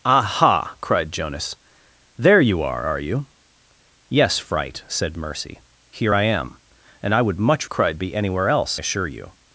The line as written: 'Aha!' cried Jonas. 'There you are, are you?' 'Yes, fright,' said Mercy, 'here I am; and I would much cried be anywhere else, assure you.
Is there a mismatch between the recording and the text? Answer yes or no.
no